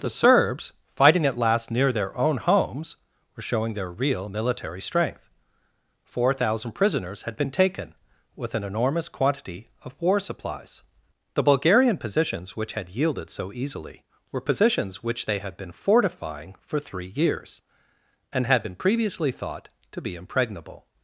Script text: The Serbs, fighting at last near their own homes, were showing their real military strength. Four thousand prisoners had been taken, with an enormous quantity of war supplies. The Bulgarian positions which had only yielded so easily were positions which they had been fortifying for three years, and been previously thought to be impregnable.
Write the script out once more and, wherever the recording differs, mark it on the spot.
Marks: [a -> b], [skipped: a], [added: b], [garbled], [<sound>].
The Serbs, fighting at last near their own homes, were showing their real military strength. Four thousand prisoners had been taken, with an enormous quantity of war supplies. The Bulgarian positions which had [skipped: only] yielded so easily were positions which they had been fortifying for three years, and [added: had] been previously thought to be impregnable.